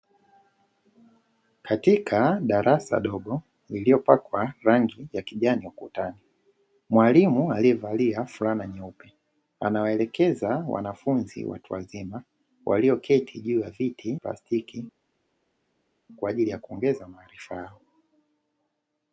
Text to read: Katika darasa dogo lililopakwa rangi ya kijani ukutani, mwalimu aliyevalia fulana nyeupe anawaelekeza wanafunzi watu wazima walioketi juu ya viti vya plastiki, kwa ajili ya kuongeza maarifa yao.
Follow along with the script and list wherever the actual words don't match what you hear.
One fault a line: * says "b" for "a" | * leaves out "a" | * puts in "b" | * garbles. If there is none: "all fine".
* leaves out "vya"